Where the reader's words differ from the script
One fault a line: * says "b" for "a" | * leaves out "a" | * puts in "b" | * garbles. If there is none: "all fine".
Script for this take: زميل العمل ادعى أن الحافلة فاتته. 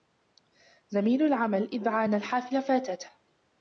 all fine